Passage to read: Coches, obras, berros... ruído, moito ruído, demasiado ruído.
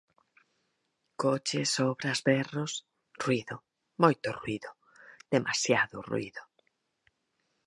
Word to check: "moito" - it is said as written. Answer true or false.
true